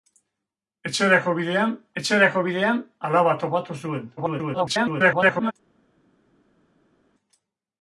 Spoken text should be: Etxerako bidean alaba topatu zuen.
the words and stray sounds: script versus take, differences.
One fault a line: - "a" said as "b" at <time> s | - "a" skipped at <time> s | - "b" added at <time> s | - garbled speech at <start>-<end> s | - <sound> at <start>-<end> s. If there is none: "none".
- "etxerako bidean" added at 2.0 s
- garbled speech at 4.2-5.5 s